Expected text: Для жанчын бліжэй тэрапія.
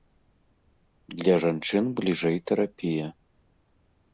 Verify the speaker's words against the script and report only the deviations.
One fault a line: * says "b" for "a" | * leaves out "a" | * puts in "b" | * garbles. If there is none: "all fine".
all fine